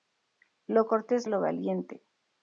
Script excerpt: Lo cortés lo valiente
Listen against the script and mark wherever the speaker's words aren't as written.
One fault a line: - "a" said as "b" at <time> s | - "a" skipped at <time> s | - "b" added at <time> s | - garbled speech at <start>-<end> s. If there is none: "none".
none